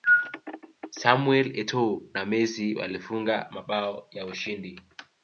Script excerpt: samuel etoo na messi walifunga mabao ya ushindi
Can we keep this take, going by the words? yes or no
yes